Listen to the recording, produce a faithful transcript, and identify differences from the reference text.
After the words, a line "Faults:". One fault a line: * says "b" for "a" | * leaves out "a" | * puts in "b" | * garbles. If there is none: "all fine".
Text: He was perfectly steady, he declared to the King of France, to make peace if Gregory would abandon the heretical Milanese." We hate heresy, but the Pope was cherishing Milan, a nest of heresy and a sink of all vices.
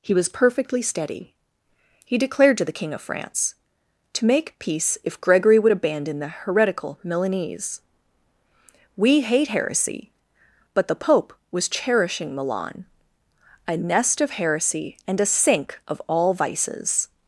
He was perfectly steady, he declared to the King of France, to make peace if Gregory would abandon the heretical Milanese." We hate heresy, but the Pope was cherishing Milan, a nest of heresy and a sink of all vices.
Faults:
all fine